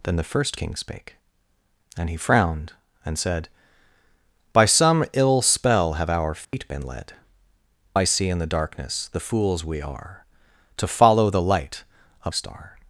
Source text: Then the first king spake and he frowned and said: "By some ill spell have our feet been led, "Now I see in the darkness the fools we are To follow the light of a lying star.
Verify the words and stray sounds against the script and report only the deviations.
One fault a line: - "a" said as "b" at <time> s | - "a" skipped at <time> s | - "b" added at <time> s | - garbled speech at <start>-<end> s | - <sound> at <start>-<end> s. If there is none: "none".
- dropout at 6.4-6.5 s
- "Now" skipped at 7.1 s
- "a lying" skipped at 12.3 s